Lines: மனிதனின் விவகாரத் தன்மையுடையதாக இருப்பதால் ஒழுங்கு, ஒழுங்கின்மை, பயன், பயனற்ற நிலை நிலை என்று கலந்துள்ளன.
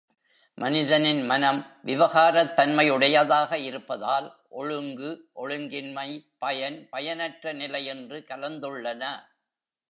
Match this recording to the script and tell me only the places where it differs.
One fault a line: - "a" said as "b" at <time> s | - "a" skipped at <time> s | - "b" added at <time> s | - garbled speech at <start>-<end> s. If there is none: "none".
- "மனம்" added at 1.2 s
- "நிலை" skipped at 7.8 s